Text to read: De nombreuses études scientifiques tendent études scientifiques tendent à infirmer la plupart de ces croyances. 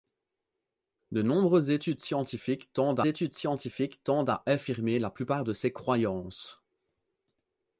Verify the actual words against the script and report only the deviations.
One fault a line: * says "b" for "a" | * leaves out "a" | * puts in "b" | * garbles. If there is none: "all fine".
all fine